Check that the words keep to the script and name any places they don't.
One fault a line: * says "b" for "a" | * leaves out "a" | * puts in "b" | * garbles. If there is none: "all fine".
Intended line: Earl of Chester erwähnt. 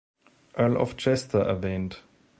all fine